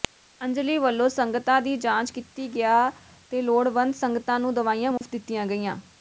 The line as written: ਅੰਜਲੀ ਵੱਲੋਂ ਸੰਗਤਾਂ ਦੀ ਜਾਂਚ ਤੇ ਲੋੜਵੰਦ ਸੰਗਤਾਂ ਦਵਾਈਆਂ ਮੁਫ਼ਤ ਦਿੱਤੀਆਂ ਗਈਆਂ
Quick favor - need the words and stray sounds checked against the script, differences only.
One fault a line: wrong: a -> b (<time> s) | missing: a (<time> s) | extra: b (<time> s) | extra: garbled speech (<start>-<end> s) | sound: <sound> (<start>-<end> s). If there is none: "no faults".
extra: ਕੀਤੀ ਗਿਆ (2.1 s)
extra: ਨੂੰ (4.4 s)
sound: dropout (5.0-5.0 s)